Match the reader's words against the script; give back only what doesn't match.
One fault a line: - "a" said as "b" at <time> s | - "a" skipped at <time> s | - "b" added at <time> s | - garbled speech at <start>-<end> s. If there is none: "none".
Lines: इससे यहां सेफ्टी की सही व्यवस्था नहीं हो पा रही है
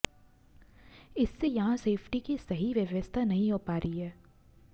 none